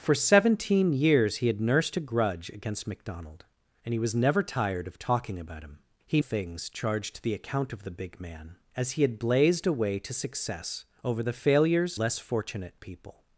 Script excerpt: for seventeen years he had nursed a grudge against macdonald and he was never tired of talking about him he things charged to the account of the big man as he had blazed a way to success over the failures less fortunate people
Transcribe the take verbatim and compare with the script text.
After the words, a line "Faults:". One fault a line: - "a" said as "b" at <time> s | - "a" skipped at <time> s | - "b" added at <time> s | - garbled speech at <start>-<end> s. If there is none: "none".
for seventeen years he had nursed a grudge against macdonald and he was never tired of talking about him he things charged to the account of the big man as he had blazed a way to success over the failures less fortunate people
Faults:
none